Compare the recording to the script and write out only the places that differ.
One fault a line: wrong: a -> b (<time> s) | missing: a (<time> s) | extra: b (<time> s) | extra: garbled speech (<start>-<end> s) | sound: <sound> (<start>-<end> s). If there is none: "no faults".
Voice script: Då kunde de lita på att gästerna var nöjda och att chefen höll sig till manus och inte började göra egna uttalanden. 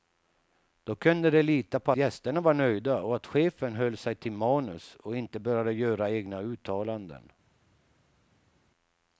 missing: att (1.9 s)